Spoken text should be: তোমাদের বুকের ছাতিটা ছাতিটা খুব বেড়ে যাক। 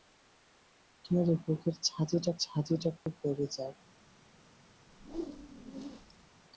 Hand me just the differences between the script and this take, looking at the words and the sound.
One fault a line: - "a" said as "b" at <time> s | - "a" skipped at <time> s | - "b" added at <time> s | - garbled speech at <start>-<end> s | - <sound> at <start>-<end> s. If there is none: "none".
- dropout at 3.0-3.1 s
- whoosh at 4.9-6.3 s